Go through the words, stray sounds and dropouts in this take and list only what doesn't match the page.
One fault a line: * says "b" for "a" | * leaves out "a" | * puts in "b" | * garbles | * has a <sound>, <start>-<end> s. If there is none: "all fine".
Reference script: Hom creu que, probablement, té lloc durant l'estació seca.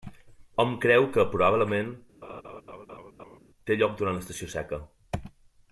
* has a laugh, 2.2-3.4 s